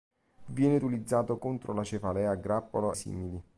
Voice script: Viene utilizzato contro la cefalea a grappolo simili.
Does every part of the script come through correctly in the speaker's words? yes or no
yes